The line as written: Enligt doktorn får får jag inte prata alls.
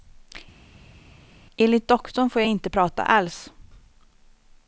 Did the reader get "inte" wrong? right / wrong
right